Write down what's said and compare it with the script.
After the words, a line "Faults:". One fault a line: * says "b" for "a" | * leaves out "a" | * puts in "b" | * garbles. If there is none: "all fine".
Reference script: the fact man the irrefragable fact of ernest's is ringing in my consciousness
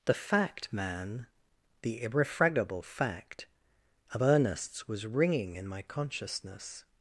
the fact man the irrefragable fact of ernest's was ringing in my consciousness
Faults:
* says "was" for "is"